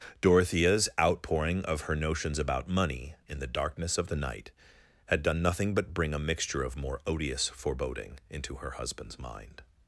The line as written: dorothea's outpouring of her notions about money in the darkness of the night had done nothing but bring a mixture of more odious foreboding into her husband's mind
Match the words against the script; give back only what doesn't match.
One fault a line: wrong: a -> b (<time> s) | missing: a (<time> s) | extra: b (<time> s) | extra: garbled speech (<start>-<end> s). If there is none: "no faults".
no faults